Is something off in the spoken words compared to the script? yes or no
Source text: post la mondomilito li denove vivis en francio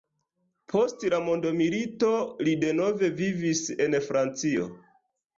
no